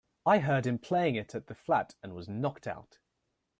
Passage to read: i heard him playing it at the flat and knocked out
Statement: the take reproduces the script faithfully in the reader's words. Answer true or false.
false